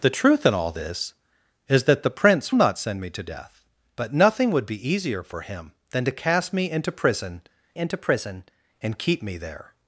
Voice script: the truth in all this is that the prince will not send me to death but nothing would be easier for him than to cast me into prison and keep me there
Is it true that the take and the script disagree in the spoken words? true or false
true